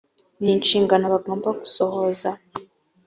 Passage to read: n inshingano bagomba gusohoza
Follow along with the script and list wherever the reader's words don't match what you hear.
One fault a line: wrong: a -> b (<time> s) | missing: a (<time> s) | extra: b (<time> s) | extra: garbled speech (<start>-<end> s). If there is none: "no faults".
no faults